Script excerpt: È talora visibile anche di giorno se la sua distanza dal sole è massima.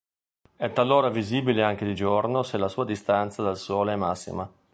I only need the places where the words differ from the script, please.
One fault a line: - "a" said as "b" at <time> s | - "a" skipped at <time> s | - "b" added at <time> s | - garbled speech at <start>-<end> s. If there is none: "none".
none